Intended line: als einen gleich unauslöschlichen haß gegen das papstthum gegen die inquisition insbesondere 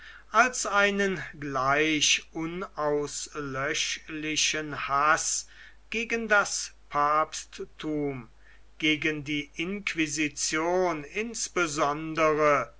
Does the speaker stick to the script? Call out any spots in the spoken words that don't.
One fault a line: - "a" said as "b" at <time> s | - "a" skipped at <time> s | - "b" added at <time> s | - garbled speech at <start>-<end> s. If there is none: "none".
none